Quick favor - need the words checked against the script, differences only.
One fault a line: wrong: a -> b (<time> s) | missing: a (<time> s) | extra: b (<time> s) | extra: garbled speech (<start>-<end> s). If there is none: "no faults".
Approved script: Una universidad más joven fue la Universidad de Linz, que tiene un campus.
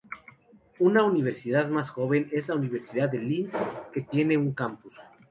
wrong: fue -> es (2.3 s)